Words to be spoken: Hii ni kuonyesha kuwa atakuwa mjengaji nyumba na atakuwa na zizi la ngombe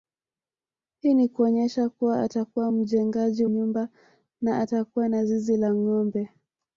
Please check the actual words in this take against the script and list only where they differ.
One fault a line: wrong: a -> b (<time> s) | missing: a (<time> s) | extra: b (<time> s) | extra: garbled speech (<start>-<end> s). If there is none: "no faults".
no faults